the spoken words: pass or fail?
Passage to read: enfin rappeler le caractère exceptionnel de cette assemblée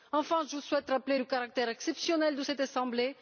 fail